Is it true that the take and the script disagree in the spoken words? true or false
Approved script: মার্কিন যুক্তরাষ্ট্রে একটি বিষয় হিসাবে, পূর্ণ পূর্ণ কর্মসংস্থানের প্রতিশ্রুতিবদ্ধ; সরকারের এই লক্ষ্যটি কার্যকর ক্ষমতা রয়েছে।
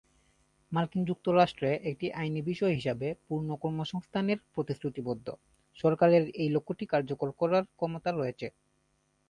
true